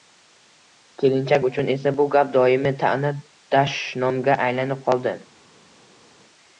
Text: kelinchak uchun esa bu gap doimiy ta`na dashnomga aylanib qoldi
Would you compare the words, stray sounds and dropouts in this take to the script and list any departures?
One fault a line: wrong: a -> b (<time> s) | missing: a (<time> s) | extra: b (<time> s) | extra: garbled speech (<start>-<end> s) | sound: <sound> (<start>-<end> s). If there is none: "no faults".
no faults